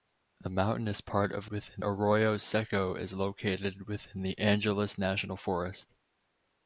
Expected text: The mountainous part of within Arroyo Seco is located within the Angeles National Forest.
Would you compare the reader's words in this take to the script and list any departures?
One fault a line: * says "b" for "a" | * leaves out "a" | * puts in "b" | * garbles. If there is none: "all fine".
all fine